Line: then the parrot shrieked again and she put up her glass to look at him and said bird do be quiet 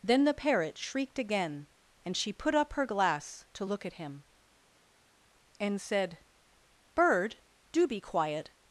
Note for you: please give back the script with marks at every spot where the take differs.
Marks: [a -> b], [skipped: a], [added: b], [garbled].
then the parrot shrieked again and she put up her glass to look at him and said bird do be quiet